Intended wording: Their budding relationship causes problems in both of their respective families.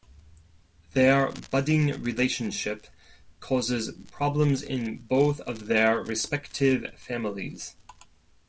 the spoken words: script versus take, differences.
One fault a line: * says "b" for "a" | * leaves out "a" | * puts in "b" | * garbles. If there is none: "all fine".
all fine